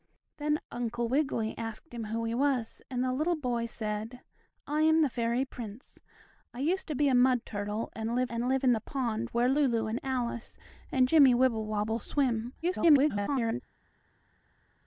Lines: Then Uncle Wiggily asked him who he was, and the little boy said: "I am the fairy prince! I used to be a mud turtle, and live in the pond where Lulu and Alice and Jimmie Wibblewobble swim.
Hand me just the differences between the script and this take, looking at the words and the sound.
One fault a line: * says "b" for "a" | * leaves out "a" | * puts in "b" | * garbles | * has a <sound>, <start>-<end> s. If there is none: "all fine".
* puts in "and live"
* garbles